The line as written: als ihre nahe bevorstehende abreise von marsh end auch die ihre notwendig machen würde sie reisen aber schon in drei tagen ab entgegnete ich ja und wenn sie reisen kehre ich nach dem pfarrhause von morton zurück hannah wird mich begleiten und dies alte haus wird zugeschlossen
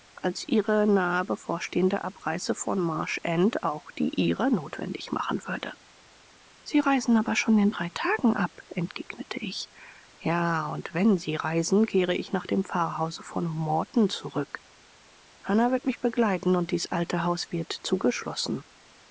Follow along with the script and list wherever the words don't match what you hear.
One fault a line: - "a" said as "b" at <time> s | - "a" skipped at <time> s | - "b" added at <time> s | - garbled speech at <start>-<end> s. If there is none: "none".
none